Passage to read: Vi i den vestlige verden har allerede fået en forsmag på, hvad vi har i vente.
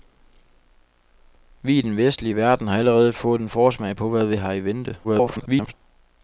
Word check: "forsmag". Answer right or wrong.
right